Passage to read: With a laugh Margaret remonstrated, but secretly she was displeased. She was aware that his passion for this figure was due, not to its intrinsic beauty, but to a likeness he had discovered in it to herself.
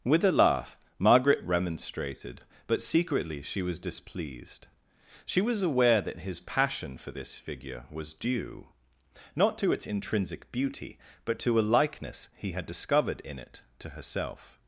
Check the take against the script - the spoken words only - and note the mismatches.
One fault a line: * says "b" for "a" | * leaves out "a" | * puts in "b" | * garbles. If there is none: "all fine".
all fine